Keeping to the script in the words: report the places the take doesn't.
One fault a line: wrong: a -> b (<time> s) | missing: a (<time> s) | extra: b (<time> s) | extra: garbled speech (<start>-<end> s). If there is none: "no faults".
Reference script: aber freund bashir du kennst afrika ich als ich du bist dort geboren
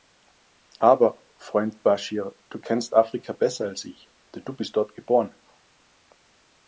wrong: ich -> besser (3.3 s)
extra: denn (4.3 s)